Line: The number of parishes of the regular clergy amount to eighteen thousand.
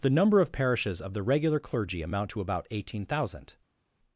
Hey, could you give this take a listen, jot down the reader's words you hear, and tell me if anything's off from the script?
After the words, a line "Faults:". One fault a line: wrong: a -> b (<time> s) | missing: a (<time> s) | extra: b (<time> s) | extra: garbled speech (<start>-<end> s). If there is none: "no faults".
The number of parishes of the regular clergy amount to about eighteen thousand.
Faults:
extra: about (2.4 s)